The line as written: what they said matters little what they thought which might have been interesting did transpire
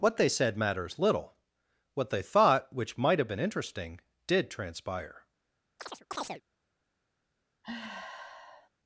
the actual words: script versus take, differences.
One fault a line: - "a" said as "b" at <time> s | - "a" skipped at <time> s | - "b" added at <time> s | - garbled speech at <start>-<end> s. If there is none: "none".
none